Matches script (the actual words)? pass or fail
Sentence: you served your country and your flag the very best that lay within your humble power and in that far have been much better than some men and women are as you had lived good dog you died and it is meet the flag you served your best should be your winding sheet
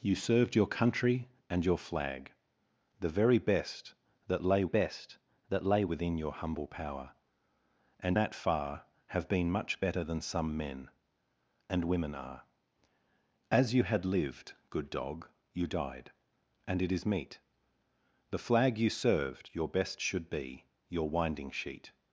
fail